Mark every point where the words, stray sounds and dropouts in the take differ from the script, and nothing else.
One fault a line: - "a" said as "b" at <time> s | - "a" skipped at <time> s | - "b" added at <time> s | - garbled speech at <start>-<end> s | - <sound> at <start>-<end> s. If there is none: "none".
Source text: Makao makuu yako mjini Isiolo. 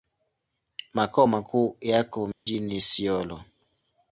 - dropout at 2.3-2.5 s